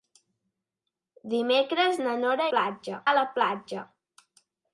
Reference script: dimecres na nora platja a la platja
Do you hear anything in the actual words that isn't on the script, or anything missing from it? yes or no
no